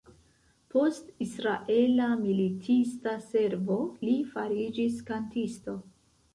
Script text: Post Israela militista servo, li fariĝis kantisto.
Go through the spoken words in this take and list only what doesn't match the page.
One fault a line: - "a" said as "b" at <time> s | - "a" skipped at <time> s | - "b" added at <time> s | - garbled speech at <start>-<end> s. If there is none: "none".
none